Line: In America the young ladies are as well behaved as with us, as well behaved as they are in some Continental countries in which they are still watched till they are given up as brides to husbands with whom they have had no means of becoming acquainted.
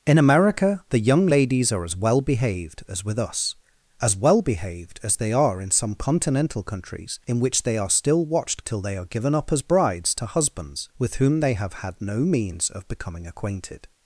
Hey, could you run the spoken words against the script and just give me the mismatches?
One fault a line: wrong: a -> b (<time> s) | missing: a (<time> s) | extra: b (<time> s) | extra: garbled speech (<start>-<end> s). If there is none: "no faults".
no faults